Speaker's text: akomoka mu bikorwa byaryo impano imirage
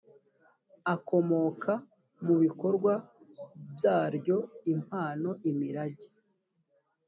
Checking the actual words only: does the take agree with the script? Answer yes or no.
yes